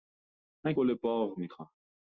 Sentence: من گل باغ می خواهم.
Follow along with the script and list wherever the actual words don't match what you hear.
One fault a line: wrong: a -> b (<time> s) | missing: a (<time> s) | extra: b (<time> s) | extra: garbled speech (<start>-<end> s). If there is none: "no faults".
no faults